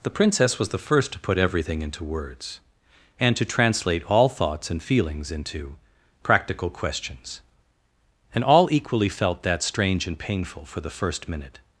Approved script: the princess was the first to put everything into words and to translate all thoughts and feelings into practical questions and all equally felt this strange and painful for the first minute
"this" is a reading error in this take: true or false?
true